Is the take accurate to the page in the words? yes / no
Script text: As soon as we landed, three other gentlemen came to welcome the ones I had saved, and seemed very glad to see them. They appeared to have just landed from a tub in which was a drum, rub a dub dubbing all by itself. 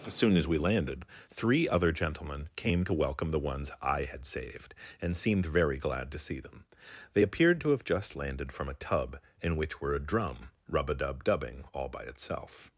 no